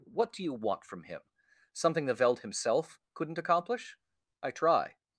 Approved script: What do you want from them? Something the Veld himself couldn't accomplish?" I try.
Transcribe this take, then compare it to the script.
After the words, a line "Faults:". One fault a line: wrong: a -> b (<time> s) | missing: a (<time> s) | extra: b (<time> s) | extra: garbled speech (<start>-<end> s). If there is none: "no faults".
What do you want from him? Something the Veld himself couldn't accomplish?" I try.
Faults:
wrong: them -> him (1.0 s)